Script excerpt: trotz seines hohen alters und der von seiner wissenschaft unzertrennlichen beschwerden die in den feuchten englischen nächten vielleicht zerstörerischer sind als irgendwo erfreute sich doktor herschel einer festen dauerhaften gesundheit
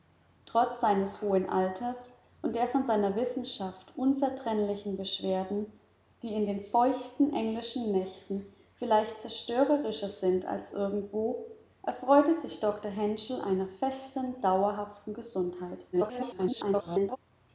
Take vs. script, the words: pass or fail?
fail